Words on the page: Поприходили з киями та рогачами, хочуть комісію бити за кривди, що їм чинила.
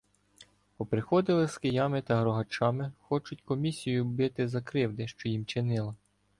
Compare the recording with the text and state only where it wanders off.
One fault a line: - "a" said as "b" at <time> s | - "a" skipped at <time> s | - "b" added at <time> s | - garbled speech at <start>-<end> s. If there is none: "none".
none